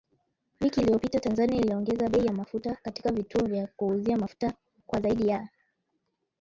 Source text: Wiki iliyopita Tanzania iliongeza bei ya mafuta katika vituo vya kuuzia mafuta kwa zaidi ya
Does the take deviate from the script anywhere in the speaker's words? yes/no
no